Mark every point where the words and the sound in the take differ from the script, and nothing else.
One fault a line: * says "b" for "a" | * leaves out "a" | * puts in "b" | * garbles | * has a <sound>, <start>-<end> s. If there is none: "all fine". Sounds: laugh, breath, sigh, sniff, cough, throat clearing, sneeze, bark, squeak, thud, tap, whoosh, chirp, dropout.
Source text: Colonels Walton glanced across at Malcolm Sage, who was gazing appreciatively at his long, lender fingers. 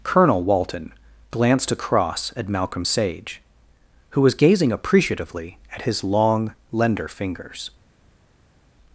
* says "Colonel" for "Colonels"